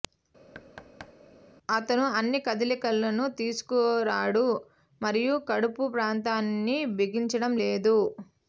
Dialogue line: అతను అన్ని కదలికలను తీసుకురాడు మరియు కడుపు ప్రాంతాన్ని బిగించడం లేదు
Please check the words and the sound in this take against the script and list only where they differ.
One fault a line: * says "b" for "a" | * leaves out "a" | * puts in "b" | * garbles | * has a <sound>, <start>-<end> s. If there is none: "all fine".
* has a thud, 0.5-1.2 s